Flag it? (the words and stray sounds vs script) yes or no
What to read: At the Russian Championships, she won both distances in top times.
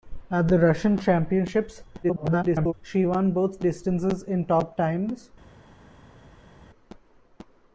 yes